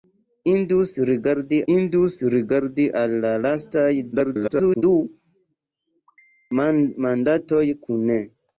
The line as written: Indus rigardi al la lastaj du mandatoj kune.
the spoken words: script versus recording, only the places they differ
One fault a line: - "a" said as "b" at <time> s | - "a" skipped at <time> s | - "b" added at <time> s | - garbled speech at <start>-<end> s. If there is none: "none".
- "indus rigardi" added at 1.7 s
- garbled speech at 4.1-4.8 s